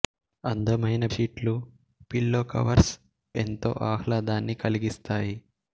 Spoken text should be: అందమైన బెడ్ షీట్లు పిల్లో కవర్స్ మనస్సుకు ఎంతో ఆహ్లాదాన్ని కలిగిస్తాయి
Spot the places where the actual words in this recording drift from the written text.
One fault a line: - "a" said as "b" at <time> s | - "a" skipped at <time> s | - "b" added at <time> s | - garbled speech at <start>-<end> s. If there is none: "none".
- "బెడ్" skipped at 1.1 s
- "మనస్సుకు" skipped at 2.9 s